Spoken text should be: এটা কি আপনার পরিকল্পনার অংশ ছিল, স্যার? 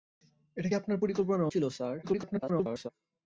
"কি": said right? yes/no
no